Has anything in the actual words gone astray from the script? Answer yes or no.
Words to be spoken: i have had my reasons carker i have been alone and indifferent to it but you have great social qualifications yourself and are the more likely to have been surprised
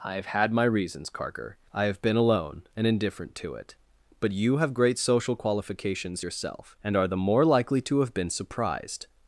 no